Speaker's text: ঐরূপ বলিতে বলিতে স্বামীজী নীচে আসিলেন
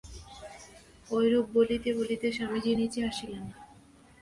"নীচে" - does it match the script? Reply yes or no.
yes